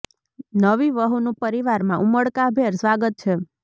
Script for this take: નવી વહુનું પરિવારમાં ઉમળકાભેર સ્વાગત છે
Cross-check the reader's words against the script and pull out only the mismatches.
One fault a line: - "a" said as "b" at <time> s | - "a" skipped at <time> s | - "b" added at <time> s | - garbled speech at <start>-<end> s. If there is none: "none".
none